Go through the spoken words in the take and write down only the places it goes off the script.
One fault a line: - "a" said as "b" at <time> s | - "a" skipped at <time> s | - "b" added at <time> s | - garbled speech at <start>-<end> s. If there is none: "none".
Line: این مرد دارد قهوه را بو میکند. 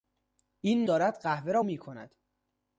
- "مرد" skipped at 0.9 s
- "بو" skipped at 1.6 s